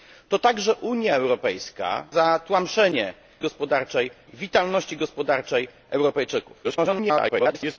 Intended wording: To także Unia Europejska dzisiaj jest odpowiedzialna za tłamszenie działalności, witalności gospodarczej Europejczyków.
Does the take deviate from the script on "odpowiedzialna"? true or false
true